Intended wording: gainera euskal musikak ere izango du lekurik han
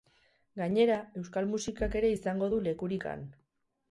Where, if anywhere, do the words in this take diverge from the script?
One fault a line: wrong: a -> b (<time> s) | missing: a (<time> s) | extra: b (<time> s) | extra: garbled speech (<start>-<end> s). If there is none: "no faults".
no faults